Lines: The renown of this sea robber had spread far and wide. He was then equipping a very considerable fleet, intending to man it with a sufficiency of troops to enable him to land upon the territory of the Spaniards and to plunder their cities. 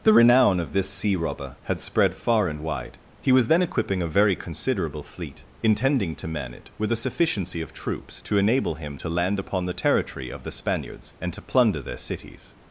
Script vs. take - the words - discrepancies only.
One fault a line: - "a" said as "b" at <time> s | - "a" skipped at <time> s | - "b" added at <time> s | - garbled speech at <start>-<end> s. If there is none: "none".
none